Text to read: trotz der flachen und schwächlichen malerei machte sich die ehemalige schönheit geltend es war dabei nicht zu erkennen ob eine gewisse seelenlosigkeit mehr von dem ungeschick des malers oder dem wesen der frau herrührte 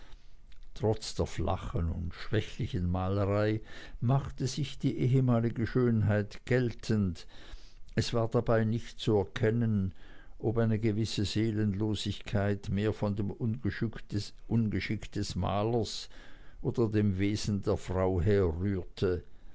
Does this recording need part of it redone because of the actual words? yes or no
no